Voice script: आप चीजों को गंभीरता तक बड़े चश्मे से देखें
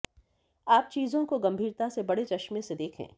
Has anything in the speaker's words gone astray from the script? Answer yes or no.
yes